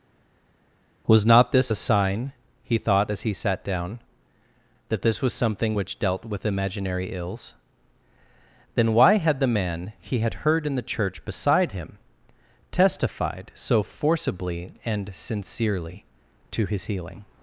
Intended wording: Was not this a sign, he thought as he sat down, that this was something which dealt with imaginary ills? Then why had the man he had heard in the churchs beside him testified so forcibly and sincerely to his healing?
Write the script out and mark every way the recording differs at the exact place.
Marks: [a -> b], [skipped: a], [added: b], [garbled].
Was not this a sign, he thought as he sat down, that this was something which dealt with imaginary ills? Then why had the man he had heard in the [churchs -> church] beside him testified so forcibly and sincerely to his healing?